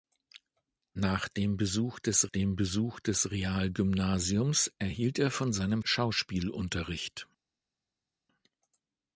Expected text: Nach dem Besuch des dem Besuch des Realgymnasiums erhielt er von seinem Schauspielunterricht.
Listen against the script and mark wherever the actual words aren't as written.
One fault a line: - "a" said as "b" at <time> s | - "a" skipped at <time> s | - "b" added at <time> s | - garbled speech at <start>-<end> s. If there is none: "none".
none